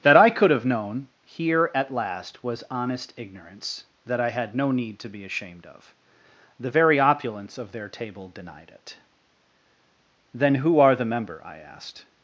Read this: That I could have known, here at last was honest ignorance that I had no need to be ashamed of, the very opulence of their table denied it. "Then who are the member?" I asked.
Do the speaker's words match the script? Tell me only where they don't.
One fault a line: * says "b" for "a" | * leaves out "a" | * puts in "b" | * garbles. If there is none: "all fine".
all fine